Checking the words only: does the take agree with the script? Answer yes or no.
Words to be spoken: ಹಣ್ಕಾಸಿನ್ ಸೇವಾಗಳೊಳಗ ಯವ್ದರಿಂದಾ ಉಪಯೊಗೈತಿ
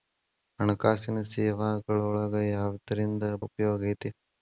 yes